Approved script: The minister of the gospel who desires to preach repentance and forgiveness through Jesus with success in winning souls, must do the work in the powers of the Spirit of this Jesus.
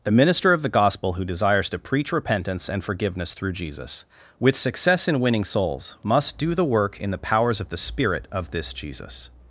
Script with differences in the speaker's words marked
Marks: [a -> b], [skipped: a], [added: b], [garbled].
The minister of the gospel who desires to preach repentance and forgiveness through Jesus with success in winning souls, must do the work in the powers of the Spirit of this Jesus.